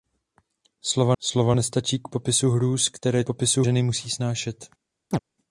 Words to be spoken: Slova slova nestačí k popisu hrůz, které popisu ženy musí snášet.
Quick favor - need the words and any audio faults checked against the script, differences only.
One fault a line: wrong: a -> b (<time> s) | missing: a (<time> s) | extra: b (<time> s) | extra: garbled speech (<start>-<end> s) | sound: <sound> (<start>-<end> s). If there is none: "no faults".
sound: chirp (5.1-5.2 s)